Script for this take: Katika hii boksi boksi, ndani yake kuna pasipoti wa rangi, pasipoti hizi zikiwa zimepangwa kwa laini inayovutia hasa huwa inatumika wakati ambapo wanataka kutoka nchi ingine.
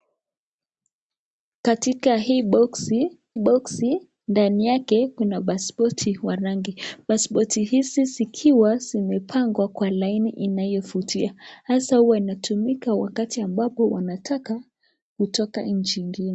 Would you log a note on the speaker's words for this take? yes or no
no